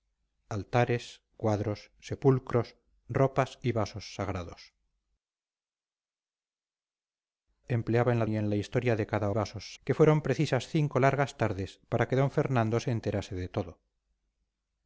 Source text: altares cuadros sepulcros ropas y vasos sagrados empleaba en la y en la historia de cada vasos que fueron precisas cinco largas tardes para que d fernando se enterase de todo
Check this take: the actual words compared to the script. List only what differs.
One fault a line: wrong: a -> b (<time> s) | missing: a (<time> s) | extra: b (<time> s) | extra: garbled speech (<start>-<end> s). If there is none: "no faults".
no faults